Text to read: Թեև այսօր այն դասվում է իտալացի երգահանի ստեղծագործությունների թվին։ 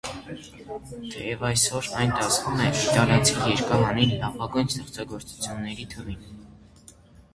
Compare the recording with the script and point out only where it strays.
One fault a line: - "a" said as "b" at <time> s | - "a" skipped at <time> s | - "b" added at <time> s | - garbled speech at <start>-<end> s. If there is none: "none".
- "լավագույն" added at 4.2 s